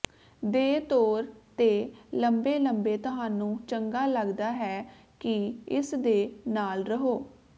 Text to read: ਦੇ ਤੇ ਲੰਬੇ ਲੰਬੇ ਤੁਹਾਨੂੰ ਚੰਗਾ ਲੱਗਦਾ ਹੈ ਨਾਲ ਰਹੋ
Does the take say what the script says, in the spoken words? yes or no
no